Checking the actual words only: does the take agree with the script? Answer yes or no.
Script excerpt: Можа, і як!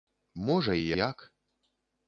yes